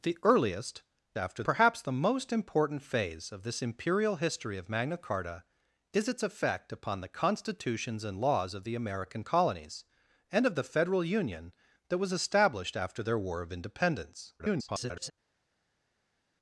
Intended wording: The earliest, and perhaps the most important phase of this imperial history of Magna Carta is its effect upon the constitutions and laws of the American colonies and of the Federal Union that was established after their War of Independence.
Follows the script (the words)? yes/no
no